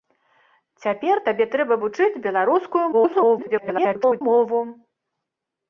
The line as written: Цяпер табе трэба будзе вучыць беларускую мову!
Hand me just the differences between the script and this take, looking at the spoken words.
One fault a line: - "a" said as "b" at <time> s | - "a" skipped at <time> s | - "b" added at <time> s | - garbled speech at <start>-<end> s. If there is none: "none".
- "будзе" skipped at 1.7 s
- garbled speech at 2.9-4.2 s